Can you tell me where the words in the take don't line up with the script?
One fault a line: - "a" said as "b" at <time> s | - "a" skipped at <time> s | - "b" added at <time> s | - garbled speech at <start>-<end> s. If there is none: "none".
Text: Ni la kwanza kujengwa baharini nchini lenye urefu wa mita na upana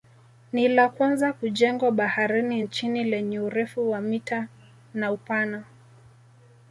none